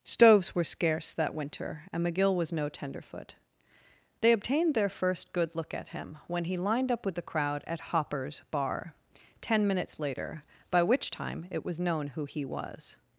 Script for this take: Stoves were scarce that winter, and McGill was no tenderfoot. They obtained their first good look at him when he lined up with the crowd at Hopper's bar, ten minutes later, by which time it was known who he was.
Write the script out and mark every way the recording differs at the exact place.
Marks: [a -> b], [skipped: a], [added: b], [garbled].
Stoves were scarce that winter, and McGill was no tenderfoot. They obtained their first good look at him when he lined up with the crowd at Hopper's bar, ten minutes later, by which time it was known who he was.